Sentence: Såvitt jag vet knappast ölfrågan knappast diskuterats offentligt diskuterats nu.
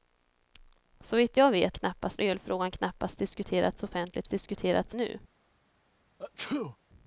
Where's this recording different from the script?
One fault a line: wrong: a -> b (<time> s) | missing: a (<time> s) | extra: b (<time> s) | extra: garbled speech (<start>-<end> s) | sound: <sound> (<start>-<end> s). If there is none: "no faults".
sound: sneeze (6.2-6.8 s)